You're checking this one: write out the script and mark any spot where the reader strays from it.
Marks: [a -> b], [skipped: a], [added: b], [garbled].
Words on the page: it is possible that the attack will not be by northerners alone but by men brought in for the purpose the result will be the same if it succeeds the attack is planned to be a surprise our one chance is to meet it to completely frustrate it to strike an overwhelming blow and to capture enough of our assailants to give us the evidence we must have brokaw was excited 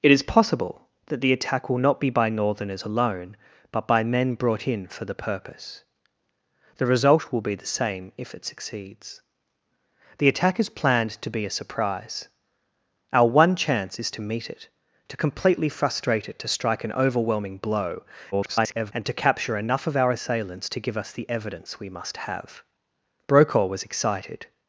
it is possible that the attack will not be by northerners alone but by men brought in for the purpose the result will be the same if it succeeds the attack is planned to be a surprise our one chance is to meet it to completely frustrate it to strike an overwhelming blow [garbled] and to capture enough of our assailants to give us the evidence we must have brokaw was excited